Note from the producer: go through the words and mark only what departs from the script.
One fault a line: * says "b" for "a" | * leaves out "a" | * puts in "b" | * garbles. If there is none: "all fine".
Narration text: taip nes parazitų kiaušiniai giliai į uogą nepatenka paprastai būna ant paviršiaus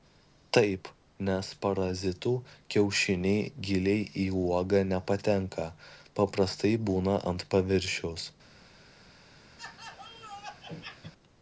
all fine